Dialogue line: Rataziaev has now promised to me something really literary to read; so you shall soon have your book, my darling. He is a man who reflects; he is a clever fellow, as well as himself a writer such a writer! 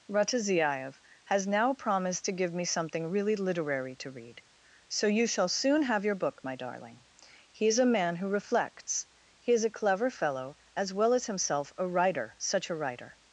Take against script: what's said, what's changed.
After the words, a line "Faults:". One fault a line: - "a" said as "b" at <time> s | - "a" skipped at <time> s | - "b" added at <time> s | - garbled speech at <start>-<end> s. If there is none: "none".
Rataziaev has now promised to give me something really literary to read; so you shall soon have your book, my darling. He is a man who reflects; he is a clever fellow, as well as himself a writer such a writer!
Faults:
- "give" added at 2.3 s